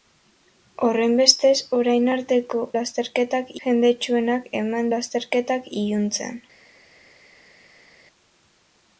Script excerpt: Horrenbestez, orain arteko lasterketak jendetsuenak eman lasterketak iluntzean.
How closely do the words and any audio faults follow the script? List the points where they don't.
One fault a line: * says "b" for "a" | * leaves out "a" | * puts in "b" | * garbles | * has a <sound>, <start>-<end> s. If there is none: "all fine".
all fine